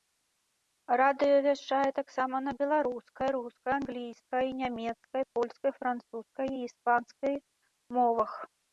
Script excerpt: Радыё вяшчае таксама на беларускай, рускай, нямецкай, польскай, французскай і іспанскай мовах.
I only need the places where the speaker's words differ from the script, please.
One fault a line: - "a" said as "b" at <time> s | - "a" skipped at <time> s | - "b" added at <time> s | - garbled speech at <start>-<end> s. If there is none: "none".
- "англійскай" added at 3.8 s